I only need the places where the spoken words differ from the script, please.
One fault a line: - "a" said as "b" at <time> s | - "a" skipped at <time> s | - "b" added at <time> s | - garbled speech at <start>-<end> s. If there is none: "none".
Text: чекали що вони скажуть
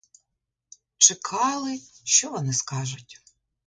none